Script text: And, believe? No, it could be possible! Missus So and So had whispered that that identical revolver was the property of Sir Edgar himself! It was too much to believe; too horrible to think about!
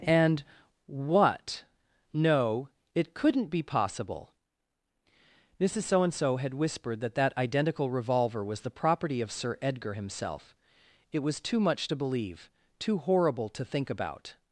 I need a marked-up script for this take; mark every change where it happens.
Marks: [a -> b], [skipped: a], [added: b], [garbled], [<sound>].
And, [believe? -> what] No, it [could -> couldn't] be possible! Missus So and So had whispered that that identical revolver was the property of Sir Edgar himself! It was too much to believe; too horrible to think about!